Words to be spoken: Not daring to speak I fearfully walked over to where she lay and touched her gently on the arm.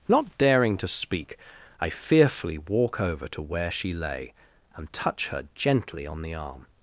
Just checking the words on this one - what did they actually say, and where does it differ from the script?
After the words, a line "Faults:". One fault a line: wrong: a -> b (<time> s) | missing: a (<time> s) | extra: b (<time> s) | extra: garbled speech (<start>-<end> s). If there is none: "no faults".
Not daring to speak I fearfully walk over to where she lay and touch her gently on the arm.
Faults:
wrong: walked -> walk (2.6 s)
wrong: touched -> touch (4.9 s)